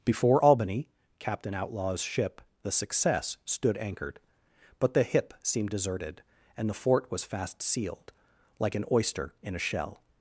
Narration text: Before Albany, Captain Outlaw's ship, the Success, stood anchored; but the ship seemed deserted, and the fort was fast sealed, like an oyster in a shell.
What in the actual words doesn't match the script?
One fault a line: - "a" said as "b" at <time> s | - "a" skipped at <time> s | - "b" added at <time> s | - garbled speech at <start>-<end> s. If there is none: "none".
- "ship" said as "hip" at 5.0 s